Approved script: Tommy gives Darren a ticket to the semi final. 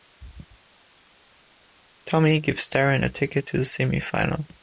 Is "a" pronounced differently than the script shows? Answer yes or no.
no